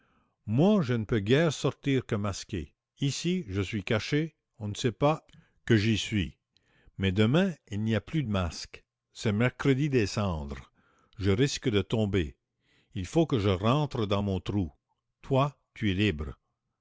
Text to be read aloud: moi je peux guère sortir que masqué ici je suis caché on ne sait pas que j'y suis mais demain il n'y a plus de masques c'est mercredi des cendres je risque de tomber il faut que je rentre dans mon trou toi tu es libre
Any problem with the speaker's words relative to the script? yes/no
yes